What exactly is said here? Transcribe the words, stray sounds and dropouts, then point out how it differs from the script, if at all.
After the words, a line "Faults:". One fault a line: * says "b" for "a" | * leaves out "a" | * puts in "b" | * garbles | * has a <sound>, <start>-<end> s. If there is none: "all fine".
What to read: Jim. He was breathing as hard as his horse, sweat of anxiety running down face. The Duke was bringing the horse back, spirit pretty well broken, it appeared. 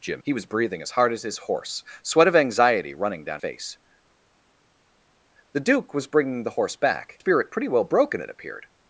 Jim. He was breathing as hard as his horse, sweat of anxiety running down face. The Duke was bringing the horse back, spirit pretty well broken, it appeared.
Faults:
all fine